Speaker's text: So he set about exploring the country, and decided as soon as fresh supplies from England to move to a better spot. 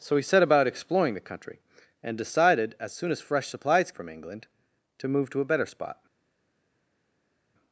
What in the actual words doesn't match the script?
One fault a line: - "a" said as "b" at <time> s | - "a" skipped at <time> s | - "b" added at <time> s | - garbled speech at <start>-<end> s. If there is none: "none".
none